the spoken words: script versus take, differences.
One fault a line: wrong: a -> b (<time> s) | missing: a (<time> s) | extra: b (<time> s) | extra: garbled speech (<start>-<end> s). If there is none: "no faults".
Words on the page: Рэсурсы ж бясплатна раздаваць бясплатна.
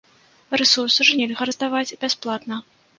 wrong: бясплатна -> нельга (1.2 s)